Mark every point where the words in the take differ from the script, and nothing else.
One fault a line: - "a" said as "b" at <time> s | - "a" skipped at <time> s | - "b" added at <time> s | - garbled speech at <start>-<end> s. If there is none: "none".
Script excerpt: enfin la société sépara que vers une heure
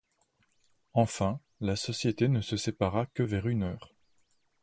- "ne se" added at 2.3 s